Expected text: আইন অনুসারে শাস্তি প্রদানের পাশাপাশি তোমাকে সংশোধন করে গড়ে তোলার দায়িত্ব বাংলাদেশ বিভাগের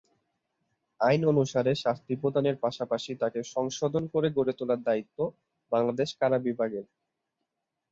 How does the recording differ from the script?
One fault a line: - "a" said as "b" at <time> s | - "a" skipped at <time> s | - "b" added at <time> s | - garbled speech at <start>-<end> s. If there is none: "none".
- "তোমাকে" said as "তাকে" at 3.1 s
- "কারা" added at 6.2 s